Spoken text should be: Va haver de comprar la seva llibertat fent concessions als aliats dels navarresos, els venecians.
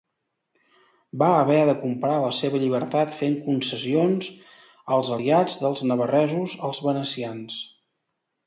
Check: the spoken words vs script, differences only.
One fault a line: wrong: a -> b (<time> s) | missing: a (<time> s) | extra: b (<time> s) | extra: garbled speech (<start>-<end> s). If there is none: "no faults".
no faults